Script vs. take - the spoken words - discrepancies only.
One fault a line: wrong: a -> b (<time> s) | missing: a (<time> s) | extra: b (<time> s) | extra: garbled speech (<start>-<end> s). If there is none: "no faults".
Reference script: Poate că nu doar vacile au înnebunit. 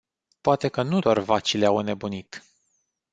no faults